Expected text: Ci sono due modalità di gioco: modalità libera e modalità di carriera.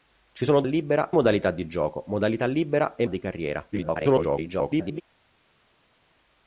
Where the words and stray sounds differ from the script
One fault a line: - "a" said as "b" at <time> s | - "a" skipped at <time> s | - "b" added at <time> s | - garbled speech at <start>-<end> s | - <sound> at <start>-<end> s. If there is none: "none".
- "due" said as "libera" at 0.6 s
- "modalità" skipped at 3.1 s
- garbled speech at 3.7-5.0 s